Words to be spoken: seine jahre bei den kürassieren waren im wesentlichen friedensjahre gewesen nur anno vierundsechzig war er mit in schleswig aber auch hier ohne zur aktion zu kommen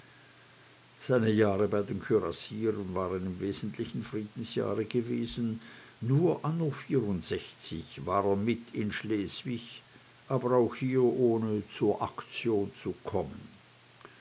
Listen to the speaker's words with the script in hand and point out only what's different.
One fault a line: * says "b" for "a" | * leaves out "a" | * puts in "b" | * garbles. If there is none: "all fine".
all fine